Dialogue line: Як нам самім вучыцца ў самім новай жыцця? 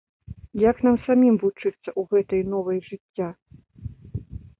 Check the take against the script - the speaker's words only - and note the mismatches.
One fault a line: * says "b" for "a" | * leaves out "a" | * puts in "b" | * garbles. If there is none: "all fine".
* says "гэтай" for "самім"